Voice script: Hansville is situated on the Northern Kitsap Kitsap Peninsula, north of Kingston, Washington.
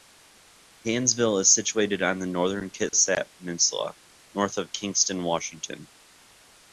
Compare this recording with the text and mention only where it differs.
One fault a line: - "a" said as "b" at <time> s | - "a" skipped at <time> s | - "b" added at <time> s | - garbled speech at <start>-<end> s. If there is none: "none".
- "Kitsap" skipped at 3.3 s